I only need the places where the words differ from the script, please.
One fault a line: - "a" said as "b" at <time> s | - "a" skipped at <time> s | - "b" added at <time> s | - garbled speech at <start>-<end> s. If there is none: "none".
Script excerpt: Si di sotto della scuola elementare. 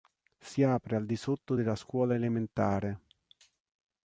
- "apre al" added at 0.6 s